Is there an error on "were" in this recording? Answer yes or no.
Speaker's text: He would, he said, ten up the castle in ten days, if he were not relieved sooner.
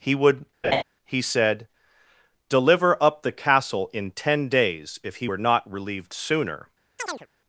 no